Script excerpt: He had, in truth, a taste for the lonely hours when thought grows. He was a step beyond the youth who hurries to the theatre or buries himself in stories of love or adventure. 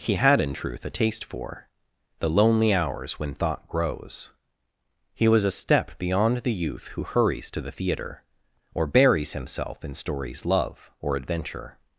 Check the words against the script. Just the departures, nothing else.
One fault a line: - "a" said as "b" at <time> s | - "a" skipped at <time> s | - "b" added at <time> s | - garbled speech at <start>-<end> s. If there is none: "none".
- "of" skipped at 10.5 s